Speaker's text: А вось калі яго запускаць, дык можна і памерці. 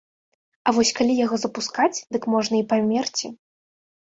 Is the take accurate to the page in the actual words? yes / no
yes